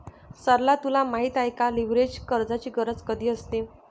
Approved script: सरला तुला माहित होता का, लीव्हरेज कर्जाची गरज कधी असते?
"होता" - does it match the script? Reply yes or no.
no